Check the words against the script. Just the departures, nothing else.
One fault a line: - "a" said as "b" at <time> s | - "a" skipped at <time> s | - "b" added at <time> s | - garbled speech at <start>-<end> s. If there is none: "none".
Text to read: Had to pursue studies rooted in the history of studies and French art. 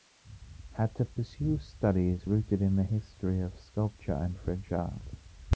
- "studies" said as "sculpture" at 3.6 s